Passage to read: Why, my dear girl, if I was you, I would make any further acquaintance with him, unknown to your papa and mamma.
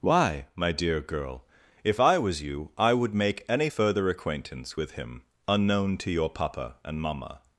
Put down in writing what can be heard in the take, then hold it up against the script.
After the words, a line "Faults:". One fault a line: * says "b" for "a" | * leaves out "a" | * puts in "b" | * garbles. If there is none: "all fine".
Why, my dear girl, if I was you, I would make any further acquaintance with him, unknown to your papa and mamma.
Faults:
all fine